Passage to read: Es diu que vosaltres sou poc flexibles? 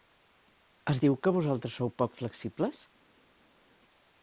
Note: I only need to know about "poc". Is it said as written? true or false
true